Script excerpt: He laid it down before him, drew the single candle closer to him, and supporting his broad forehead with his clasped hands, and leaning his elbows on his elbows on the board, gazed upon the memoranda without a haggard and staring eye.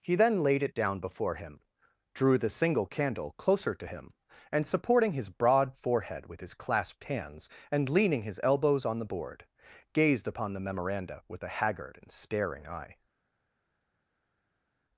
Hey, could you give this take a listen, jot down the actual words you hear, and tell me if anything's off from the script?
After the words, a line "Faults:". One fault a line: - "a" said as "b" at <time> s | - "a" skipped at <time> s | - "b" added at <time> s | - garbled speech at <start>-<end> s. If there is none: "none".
He then laid it down before him, drew the single candle closer to him, and supporting his broad forehead with his clasped hands, and leaning his elbows on the board, gazed upon the memoranda with a haggard and staring eye.
Faults:
- "then" added at 0.1 s
- "his elbows on" skipped at 9.0 s
- "without" said as "with" at 11.3 s